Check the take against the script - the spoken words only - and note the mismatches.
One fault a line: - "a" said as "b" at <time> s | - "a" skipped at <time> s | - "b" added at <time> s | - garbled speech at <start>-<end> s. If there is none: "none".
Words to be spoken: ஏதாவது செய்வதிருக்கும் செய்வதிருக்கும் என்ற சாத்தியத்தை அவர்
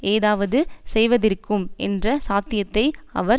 - "செய்வதிருக்கும்" skipped at 1.7 s